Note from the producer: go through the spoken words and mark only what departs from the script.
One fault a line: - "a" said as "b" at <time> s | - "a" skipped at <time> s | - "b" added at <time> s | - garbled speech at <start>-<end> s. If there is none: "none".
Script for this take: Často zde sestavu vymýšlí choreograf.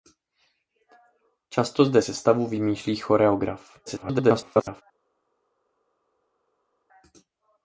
- garbled speech at 3.9-4.8 s